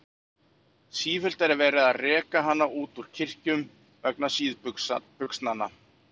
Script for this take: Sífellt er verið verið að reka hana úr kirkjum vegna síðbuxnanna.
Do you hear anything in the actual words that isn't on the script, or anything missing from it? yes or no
yes